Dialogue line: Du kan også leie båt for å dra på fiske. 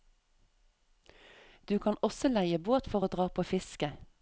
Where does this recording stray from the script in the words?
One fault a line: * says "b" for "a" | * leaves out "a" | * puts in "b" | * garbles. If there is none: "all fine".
all fine